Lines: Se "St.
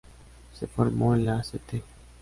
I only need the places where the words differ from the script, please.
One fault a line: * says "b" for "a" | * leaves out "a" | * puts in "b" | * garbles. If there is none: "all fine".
* puts in "formó en la"